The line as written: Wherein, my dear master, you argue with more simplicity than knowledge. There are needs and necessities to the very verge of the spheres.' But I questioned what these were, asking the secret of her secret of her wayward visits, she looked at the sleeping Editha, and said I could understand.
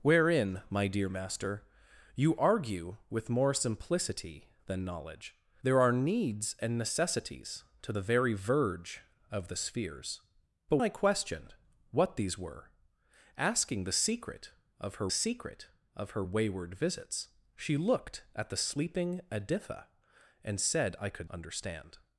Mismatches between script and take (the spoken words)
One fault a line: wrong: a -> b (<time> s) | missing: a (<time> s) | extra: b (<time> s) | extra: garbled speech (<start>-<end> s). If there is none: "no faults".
no faults